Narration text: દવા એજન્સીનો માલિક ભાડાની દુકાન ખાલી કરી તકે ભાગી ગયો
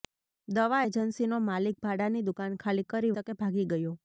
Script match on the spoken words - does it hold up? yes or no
yes